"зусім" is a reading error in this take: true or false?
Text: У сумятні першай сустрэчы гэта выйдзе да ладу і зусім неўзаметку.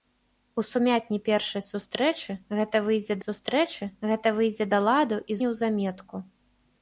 true